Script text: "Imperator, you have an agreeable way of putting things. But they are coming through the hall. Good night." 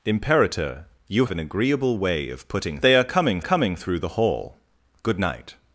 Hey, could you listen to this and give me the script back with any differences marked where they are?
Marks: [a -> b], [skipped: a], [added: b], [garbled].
"Imperator, you [skipped: have] an agreeable way of putting [skipped: things. But] they are coming [added: coming] through the hall. Good night."